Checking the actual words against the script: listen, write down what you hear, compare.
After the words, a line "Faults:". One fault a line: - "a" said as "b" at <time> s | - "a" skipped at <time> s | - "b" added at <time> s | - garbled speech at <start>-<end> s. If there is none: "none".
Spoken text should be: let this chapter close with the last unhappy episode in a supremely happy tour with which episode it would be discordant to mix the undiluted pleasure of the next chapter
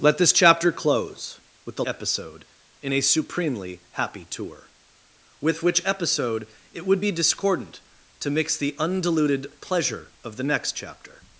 let this chapter close with the episode in a supremely happy tour with which episode it would be discordant to mix the undiluted pleasure of the next chapter
Faults:
- "last unhappy" skipped at 1.9 s